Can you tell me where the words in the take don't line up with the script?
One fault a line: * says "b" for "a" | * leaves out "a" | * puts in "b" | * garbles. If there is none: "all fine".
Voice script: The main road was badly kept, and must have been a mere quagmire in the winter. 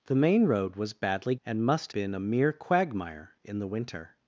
* leaves out "kept"
* leaves out "have"